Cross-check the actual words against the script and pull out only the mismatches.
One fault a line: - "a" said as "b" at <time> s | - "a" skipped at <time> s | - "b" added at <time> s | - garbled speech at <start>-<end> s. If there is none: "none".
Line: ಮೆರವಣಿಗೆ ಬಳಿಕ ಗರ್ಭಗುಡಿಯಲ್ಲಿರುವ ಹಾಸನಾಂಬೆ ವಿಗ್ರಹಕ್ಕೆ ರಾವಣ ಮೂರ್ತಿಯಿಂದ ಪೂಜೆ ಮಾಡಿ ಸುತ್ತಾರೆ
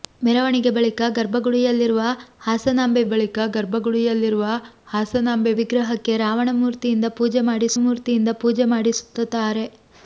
- "ಬಳಿಕ ಗರ್ಭಗುಡಿಯಲ್ಲಿರುವ ಹಾಸನಾಂಬೆ" added at 3.0 s
- "ಮೂರ್ತಿಯಿಂದ ಪೂಜೆ ಮಾಡಿ" added at 7.8 s